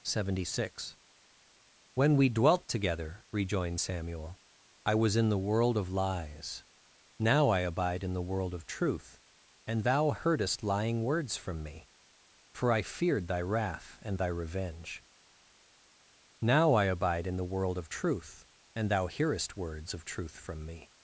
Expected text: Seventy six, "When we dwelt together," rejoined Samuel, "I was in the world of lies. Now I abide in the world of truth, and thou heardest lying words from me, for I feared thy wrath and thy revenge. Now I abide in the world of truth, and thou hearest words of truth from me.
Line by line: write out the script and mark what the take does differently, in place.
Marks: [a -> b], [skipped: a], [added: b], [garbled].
Seventy six, "When we dwelt together," rejoined Samuel, "I was in the world of lies. Now I abide in the world of truth, and thou heardest lying words from me, for I feared thy wrath and thy revenge. Now I abide in the world of truth, and thou hearest words of truth from me.